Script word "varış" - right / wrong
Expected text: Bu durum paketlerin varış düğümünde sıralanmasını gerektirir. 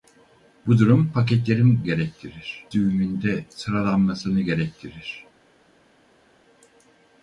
wrong